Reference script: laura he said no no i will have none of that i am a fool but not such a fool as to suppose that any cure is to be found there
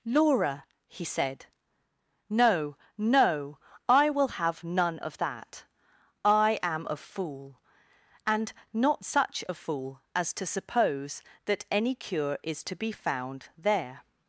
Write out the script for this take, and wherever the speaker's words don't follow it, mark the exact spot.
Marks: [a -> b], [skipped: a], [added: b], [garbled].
laura he said no no i will have none of that i am a fool [but -> and] not such a fool as to suppose that any cure is to be found there